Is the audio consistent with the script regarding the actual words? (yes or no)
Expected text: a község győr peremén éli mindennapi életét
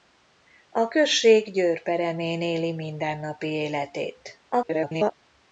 no